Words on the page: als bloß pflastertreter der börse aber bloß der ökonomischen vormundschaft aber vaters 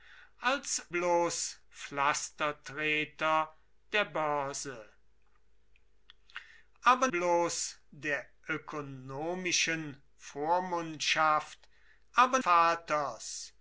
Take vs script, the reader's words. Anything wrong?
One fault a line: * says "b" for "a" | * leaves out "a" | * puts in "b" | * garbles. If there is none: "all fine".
all fine